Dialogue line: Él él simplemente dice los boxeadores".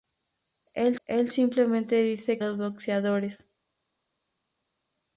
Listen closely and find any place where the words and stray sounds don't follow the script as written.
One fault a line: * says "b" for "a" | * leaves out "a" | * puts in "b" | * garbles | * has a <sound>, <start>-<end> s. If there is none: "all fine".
all fine